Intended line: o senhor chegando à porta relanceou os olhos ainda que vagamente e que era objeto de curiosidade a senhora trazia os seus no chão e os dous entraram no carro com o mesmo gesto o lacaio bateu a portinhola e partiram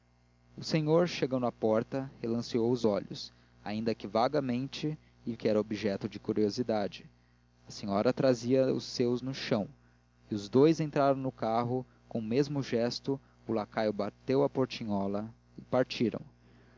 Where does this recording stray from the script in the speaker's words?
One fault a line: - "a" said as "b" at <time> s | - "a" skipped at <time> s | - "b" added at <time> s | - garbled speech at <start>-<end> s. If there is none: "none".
none